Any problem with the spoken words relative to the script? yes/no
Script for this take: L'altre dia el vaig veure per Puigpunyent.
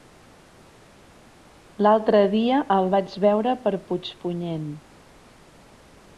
no